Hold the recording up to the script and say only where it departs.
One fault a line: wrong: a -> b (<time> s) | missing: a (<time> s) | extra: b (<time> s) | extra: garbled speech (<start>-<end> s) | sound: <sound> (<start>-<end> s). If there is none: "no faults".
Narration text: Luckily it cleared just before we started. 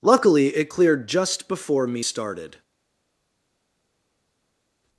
wrong: we -> me (1.9 s)